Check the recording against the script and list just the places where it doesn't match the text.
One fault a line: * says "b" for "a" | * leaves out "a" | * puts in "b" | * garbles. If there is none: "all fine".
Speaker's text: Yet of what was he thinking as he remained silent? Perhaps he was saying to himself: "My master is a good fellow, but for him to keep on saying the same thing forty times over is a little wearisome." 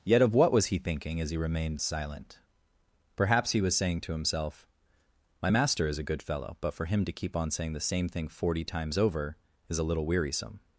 all fine